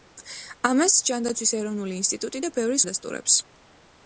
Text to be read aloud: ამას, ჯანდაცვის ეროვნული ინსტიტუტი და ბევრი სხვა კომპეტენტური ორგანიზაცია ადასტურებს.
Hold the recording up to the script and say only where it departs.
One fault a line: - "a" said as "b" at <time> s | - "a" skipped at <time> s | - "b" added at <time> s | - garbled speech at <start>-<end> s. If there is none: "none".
- "სხვა კომპეტენტური ორგანიზაცია" skipped at 2.8 s